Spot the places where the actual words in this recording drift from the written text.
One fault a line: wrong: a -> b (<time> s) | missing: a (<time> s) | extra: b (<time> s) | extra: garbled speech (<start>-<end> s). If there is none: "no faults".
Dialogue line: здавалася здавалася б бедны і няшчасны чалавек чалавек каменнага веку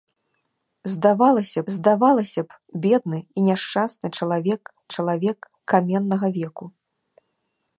no faults